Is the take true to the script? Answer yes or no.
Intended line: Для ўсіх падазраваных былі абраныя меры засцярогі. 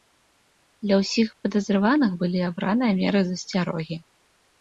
yes